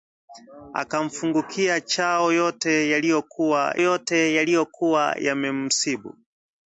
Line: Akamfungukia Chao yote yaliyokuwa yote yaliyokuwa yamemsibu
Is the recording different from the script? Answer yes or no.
no